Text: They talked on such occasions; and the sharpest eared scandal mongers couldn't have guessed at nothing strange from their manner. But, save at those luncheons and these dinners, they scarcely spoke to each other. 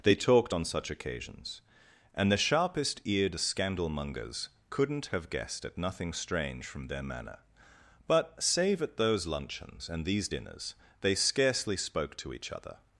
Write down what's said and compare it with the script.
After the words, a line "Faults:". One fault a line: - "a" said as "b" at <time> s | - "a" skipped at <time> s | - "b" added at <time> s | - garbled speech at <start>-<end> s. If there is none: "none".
They talked on such occasions; and the sharpest eared scandal mongers couldn't have guessed at nothing strange from their manner. But, save at those luncheons and these dinners, they scarcely spoke to each other.
Faults:
none